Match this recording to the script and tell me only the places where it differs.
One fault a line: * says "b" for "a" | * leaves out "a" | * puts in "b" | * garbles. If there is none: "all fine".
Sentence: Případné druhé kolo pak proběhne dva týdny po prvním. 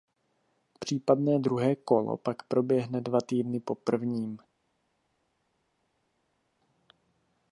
all fine